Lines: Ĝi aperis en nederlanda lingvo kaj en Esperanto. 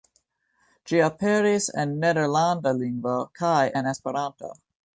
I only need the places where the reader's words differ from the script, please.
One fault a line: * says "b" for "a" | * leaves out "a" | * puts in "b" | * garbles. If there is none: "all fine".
all fine